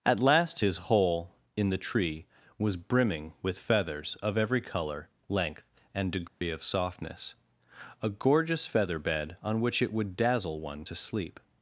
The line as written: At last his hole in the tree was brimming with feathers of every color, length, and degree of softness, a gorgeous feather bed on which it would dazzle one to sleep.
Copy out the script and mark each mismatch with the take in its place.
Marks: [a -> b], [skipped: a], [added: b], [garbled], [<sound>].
At last his hole in the tree was brimming with feathers of every color, length, and degree [dropout] of softness, a gorgeous feather bed on which it would dazzle one to sleep.